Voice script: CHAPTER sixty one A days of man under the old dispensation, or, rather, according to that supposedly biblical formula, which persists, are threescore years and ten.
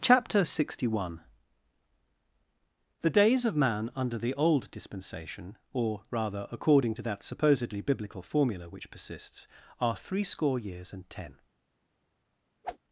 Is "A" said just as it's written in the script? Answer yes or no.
no